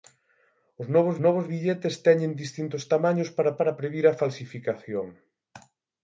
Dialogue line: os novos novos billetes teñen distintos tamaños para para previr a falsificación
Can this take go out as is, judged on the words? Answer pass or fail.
pass